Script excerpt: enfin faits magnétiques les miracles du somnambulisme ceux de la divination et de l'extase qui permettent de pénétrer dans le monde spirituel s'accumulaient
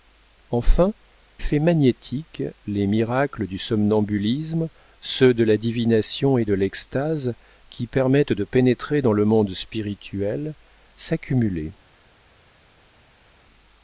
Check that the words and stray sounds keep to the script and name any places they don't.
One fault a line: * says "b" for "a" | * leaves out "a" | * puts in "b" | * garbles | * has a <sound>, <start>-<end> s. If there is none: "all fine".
all fine